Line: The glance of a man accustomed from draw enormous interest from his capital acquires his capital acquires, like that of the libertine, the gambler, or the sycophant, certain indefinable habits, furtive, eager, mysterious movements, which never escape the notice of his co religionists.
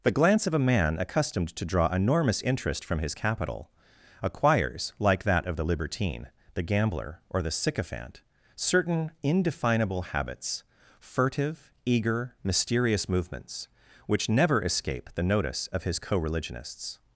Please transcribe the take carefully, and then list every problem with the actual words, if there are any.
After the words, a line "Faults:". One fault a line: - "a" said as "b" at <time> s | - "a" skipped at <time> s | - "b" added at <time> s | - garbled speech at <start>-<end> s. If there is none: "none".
The glance of a man accustomed to draw enormous interest from his capital acquires, like that of the libertine, the gambler, or the sycophant, certain indefinable habits, furtive, eager, mysterious movements, which never escape the notice of his co religionists.
Faults:
- "from" said as "to" at 1.5 s
- "his capital acquires" skipped at 4.9 s